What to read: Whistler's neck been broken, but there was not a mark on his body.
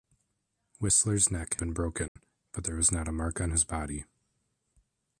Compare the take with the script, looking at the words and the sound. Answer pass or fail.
fail